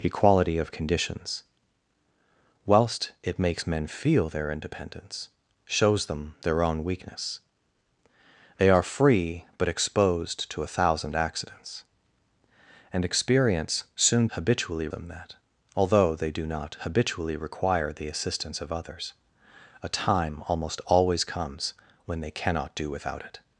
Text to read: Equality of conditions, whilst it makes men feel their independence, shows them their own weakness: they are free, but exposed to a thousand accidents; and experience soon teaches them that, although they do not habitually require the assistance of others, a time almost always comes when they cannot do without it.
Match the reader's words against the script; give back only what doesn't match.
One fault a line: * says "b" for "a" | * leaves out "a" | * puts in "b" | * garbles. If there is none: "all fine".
* says "habitually" for "teaches"